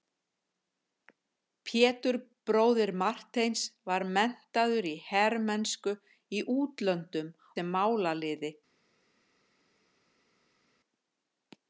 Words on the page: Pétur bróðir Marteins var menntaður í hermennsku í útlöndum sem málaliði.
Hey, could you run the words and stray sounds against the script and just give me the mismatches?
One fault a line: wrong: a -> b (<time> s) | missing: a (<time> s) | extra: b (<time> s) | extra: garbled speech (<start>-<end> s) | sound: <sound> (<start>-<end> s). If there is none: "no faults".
no faults